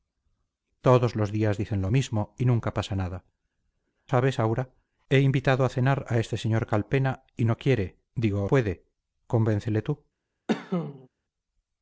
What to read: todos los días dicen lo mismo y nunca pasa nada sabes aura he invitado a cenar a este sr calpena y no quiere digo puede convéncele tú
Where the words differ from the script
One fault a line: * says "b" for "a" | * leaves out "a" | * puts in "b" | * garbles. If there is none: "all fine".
all fine